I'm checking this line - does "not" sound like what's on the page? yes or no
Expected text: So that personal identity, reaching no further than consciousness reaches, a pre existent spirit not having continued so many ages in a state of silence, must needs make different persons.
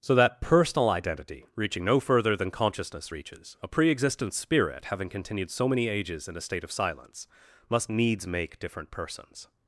no